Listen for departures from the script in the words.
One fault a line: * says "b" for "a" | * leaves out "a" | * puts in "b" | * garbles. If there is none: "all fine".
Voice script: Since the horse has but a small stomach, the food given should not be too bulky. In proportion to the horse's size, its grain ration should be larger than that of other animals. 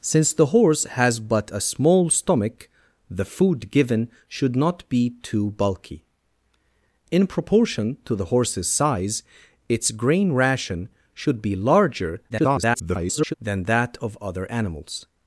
* garbles